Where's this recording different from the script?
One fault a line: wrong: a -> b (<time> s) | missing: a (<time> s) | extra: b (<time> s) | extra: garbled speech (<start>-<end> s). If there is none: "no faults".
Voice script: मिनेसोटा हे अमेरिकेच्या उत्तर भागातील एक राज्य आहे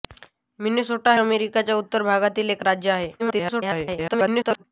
missing: हे (1.1 s)
extra: garbled speech (3.2-4.6 s)